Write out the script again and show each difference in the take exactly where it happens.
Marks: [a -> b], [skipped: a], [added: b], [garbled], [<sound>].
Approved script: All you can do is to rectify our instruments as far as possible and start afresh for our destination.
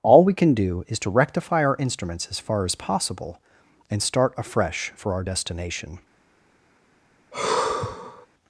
All [you -> we] can do is to rectify our instruments as far as possible and start afresh for our destination. [sigh]